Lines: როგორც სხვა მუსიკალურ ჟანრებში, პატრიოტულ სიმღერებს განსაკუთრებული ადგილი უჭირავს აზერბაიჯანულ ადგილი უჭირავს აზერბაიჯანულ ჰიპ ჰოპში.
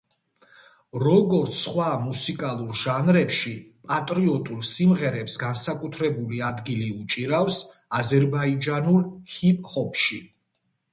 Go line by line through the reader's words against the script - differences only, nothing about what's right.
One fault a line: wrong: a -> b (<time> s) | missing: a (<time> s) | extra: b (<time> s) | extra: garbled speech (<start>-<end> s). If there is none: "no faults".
missing: ადგილი უჭირავს აზერბაიჯანულ (9.0 s)